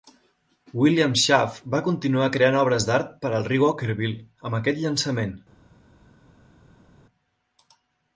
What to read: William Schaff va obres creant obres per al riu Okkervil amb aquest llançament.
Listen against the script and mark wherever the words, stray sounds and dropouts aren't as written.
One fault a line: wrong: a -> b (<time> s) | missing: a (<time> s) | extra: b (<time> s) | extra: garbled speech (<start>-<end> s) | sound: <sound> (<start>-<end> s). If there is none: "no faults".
wrong: obres -> continuar (1.9 s)
extra: d'art (2.9 s)